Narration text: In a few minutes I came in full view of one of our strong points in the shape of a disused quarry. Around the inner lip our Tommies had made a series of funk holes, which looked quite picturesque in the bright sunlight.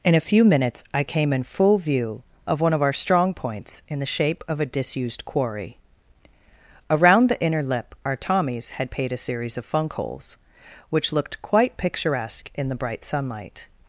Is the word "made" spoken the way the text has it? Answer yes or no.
no